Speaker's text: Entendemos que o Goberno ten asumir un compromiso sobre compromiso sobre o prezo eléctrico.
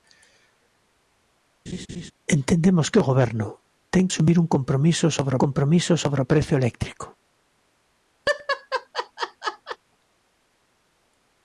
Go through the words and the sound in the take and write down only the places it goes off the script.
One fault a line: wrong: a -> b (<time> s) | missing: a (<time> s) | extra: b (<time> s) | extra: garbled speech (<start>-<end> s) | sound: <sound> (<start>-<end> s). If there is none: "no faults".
sound: laugh (1.7-2.1 s)
sound: laugh (8.3-9.8 s)